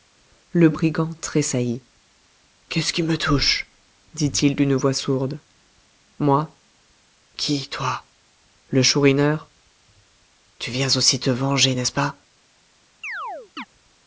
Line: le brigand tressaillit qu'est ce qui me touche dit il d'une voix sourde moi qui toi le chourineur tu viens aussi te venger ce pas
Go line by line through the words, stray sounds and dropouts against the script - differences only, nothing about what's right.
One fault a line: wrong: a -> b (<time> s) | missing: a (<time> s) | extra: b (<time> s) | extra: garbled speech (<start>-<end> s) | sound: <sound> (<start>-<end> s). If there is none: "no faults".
extra: n'est (11.7 s)
sound: chirp (13.0-13.7 s)